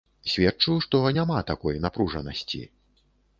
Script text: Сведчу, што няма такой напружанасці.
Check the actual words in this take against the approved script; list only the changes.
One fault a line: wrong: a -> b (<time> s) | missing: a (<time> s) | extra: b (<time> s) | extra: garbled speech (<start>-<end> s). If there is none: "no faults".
no faults